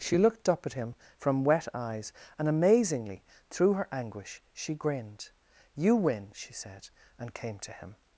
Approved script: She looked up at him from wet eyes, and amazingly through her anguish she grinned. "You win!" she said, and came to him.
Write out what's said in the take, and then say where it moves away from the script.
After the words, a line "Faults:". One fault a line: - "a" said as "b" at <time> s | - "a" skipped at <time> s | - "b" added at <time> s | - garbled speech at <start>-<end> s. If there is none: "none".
She looked up at him from wet eyes, and amazingly through her anguish she grinned. "You win!" she said, and came to him.
Faults:
none